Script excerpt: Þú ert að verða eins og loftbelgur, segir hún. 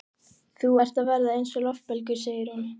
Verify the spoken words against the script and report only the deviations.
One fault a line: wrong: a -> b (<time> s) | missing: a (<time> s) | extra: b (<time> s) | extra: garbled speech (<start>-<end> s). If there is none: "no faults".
no faults